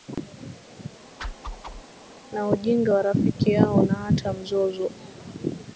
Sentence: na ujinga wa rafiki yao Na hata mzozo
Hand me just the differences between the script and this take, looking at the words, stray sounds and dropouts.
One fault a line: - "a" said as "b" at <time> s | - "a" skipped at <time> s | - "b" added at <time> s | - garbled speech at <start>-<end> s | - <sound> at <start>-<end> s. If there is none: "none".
- whoosh at 1.2-1.8 s